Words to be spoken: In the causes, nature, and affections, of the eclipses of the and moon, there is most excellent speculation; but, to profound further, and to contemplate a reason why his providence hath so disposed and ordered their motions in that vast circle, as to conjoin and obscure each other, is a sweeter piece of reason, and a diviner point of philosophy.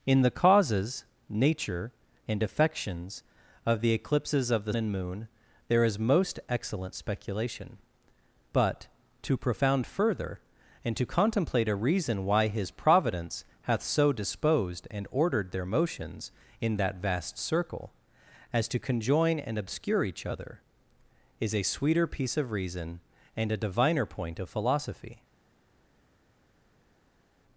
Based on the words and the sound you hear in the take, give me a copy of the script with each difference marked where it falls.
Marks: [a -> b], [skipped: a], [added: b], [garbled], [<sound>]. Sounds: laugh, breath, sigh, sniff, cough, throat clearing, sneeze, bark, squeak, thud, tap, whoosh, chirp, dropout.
In the causes, nature, and affections, of the eclipses of the and moon, there is most excellent speculation; but, to profound further, and to contemplate a reason why his providence hath so disposed and ordered their motions in that vast circle, as to conjoin and obscure each other, is a sweeter piece of reason, and a diviner point of philosophy.